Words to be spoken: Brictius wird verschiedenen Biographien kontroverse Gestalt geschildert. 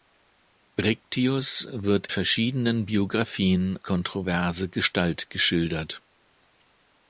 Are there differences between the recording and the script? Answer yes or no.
no